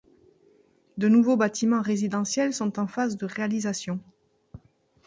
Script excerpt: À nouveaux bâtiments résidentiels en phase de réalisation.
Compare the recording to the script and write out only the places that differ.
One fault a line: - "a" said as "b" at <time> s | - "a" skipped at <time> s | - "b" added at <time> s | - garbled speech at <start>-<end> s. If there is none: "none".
- "À" said as "De" at 1.0 s
- "sont" added at 2.5 s